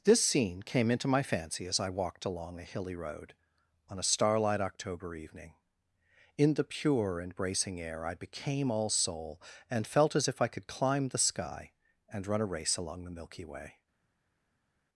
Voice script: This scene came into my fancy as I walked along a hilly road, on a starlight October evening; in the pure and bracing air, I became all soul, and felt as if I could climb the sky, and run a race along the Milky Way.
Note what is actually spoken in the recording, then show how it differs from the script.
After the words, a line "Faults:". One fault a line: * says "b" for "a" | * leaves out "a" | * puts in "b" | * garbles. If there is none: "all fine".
This scene came into my fancy as I walked along a hilly road, on a starlight October evening; in the pure and bracing air, I became all soul, and felt as if I could climb the sky, and run a race along the Milky Way.
Faults:
all fine